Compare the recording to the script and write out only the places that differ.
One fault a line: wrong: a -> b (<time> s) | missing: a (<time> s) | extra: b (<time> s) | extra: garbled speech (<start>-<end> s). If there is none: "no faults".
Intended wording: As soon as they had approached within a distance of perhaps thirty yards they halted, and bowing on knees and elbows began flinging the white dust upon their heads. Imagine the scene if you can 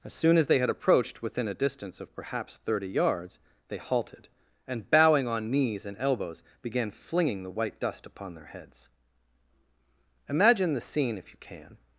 no faults